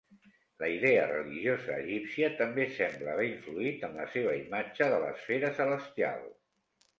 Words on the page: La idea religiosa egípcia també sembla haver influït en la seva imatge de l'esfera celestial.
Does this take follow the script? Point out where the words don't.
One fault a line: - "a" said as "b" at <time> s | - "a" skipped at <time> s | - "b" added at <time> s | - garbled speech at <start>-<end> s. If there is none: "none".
none